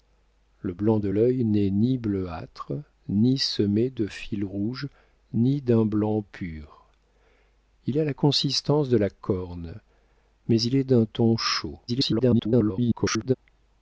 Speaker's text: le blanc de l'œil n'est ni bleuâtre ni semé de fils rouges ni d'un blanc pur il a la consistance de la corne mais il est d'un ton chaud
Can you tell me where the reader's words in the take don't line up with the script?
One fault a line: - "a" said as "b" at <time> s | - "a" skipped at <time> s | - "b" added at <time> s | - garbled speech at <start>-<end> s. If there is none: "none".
- garbled speech at 11.9-13.3 s